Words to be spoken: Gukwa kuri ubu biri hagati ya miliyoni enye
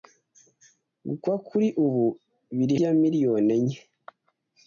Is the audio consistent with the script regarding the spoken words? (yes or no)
no